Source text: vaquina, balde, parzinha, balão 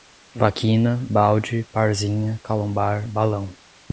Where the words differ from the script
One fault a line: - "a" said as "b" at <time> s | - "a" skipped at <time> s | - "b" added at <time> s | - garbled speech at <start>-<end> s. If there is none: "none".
- "calombar" added at 2.4 s